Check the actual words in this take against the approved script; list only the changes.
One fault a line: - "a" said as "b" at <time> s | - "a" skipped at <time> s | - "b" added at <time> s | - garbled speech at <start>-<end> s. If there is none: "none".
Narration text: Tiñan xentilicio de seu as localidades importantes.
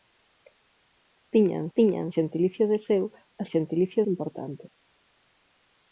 - "tiñan" added at 1.8 s
- "localidades" said as "xentilicio" at 3.5 s